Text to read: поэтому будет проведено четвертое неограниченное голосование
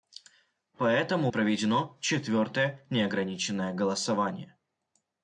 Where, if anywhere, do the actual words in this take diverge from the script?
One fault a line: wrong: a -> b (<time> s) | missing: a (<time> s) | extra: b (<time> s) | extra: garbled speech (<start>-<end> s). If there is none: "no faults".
missing: будет (1.3 s)